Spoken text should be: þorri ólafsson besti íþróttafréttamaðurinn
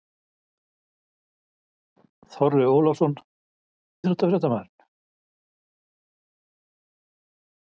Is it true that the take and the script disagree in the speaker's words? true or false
true